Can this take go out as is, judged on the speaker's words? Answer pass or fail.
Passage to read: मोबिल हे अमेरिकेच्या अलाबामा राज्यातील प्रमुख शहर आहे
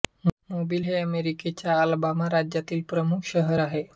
pass